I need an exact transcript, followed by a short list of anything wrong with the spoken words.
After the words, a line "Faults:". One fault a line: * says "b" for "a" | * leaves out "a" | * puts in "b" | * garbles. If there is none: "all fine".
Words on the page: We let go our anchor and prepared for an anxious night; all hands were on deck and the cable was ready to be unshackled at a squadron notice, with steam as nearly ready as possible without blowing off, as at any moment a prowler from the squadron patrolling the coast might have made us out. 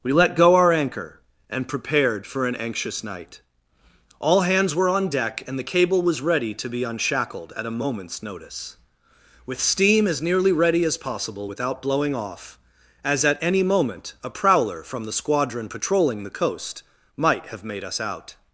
We let go our anchor and prepared for an anxious night; all hands were on deck and the cable was ready to be unshackled at a moment's notice, with steam as nearly ready as possible without blowing off, as at any moment a prowler from the squadron patrolling the coast might have made us out.
Faults:
* says "moment's" for "squadron"